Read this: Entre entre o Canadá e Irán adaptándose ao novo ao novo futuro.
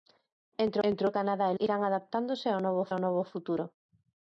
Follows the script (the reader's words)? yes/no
yes